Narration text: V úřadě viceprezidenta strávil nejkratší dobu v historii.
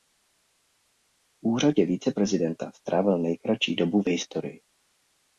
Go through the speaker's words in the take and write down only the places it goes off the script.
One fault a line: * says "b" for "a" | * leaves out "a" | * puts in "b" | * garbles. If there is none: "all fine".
all fine